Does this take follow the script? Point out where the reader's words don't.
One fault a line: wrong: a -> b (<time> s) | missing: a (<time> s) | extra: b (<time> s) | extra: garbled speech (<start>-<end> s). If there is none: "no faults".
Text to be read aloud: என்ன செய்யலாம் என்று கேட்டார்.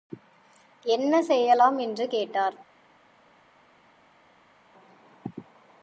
no faults